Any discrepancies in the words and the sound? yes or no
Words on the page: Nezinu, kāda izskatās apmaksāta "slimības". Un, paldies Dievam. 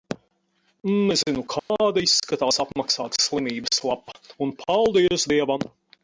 yes